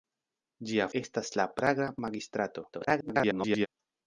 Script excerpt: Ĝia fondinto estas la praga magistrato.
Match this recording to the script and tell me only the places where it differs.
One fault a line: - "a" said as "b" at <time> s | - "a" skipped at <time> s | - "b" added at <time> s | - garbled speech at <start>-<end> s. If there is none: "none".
- "fondinto" skipped at 0.8 s
- garbled speech at 2.7-3.7 s